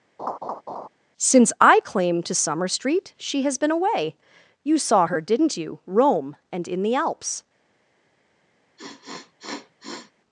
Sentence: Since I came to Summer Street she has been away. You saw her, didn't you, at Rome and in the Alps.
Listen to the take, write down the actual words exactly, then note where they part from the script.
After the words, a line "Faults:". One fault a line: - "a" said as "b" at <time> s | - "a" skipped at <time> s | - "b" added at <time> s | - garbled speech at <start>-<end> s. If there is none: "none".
Since I claim to Summer Street she has been away. You saw her, didn't you, Rome and in the Alps.
Faults:
- "came" said as "claim" at 1.8 s
- "at" skipped at 5.8 s